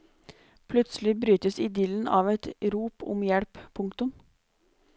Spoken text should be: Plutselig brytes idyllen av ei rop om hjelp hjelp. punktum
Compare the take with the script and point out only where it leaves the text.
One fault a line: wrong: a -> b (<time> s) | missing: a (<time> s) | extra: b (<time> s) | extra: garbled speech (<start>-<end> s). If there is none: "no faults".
wrong: ei -> et (2.4 s)
missing: hjelp (3.6 s)